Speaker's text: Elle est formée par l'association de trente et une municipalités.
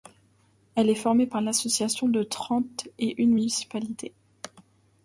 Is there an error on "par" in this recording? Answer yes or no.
no